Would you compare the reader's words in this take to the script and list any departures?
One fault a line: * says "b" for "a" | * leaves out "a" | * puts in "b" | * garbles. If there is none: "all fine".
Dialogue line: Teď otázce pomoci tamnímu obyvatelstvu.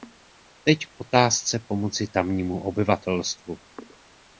* puts in "k"